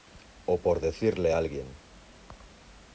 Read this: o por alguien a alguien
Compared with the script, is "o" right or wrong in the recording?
right